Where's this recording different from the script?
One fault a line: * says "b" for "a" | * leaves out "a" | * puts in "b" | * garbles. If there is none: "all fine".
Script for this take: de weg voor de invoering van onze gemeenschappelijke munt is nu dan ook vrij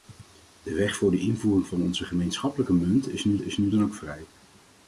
* puts in "is nu"